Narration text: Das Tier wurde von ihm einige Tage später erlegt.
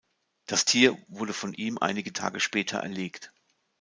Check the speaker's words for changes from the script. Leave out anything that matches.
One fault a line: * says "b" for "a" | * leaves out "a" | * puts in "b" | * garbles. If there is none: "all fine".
all fine